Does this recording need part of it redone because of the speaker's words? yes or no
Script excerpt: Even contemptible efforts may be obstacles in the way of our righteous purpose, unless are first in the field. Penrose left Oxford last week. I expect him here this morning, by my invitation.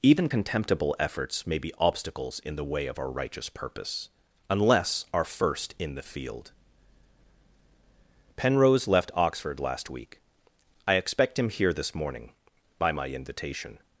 no